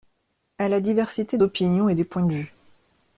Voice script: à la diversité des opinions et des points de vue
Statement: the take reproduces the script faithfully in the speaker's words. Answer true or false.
false